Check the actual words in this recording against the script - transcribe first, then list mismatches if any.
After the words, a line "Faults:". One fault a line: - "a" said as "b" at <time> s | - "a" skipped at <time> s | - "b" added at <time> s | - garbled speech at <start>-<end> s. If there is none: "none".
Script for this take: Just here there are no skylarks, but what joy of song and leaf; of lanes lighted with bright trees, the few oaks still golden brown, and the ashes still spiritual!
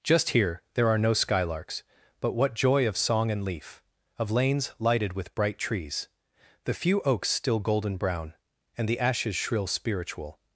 Just here there are no skylarks, but what joy of song and leaf; of lanes lighted with bright trees, the few oaks still golden brown, and the ashes shrill spiritual!
Faults:
- "still" said as "shrill" at 9.3 s